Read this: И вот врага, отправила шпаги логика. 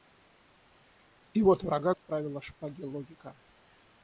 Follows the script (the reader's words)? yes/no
yes